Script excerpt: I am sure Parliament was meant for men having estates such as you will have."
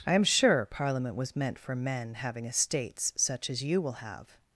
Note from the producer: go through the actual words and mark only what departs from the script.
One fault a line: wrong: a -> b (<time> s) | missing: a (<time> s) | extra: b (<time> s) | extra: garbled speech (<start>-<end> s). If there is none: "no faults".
no faults